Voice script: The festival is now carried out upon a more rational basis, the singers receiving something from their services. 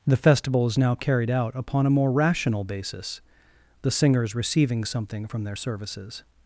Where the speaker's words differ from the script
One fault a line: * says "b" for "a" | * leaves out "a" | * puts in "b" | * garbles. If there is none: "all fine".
all fine